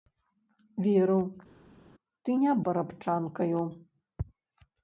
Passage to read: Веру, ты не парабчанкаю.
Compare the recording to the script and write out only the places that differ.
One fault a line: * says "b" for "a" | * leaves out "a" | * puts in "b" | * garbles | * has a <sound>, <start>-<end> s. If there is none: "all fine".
all fine